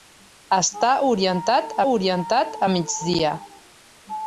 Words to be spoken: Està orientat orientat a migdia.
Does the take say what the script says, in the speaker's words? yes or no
yes